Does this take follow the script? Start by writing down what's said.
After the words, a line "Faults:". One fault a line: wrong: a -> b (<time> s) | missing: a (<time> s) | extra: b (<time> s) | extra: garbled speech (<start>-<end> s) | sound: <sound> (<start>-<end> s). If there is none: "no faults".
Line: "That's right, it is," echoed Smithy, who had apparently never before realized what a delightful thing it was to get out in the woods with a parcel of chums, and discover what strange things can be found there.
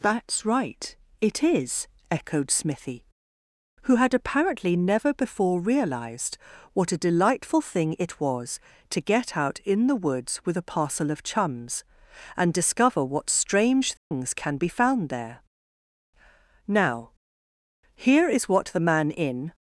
"That's right, it is," echoed Smithy, who had apparently never before realized what a delightful thing it was to get out in the woods with a parcel of chums, and discover what strange things can be found there. "Now, here is what the man in
Faults:
sound: dropout (14.0-14.1 s)
extra: Now here is what the man in (16.6 s)